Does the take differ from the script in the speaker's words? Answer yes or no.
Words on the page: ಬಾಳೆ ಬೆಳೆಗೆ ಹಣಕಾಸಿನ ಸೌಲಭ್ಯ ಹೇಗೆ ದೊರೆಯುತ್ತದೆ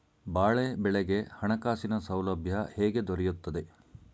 no